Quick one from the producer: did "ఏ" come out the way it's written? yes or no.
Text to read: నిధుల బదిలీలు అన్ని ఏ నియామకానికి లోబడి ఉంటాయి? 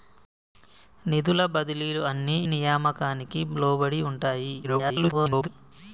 no